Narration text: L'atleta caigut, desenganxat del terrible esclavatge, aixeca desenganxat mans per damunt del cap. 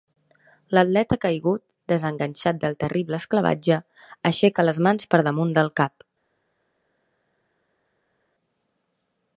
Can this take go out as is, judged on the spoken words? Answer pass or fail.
fail